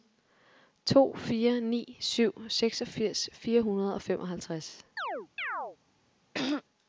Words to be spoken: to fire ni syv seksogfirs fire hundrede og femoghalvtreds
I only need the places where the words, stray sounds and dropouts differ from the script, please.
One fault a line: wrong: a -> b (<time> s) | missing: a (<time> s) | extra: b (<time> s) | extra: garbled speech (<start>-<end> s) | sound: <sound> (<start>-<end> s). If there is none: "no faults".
sound: chirp (5.0-5.8 s)
sound: throat clearing (6.3-6.6 s)